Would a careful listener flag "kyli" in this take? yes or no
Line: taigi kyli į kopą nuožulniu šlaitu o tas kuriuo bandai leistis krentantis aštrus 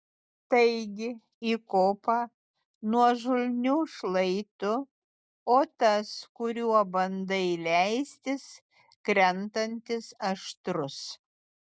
yes